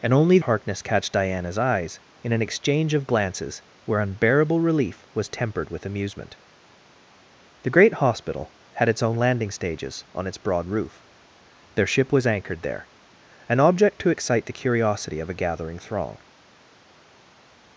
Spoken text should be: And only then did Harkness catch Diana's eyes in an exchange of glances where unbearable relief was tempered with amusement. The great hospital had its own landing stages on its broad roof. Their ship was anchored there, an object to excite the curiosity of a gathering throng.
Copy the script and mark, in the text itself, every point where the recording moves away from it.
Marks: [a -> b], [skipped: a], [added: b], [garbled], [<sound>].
And only [skipped: then did] Harkness catch Diana's eyes in an exchange of glances where unbearable relief was tempered with amusement. The great hospital had its own landing stages on its broad roof. Their ship was anchored there, an object to excite the curiosity of a gathering throng.